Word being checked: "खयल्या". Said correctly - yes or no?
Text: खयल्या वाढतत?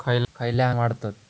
yes